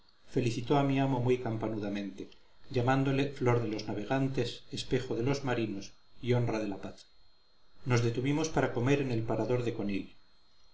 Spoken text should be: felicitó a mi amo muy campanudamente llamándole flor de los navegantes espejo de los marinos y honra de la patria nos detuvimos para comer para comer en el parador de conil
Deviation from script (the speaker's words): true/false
true